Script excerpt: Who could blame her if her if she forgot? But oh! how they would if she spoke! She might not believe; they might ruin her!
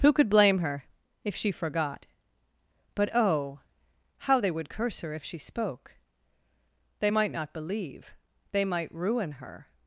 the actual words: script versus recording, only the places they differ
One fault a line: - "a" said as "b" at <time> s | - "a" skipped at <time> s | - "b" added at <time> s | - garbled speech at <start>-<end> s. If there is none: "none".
- "her if" skipped at 1.4 s
- "curse her" added at 4.7 s
- "She" said as "They" at 7.0 s